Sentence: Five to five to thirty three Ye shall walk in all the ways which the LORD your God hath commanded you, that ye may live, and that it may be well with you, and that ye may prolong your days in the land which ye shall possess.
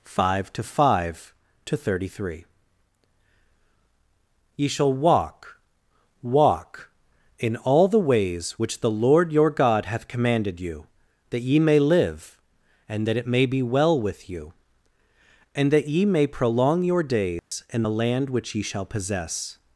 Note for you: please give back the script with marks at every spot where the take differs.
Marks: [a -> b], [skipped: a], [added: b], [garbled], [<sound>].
Five to five to thirty three Ye shall walk [added: walk] in all the ways which the LORD your God hath commanded you, that ye may live, and that it may be well with you, and that ye may prolong your days [dropout] in the land which ye shall possess.